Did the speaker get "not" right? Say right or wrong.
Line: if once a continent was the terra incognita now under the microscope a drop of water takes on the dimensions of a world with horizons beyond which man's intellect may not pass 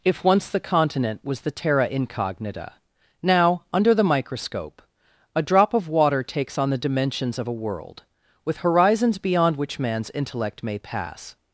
wrong